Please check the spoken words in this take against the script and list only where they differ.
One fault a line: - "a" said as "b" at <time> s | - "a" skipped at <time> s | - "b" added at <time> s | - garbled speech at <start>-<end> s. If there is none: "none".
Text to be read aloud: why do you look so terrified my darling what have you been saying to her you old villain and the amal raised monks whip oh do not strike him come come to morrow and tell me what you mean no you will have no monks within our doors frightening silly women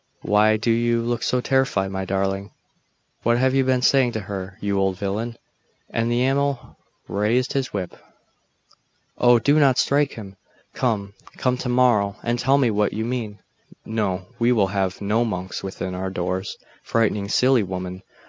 - "monks" said as "his" at 7.5 s
- "you" said as "we" at 14.4 s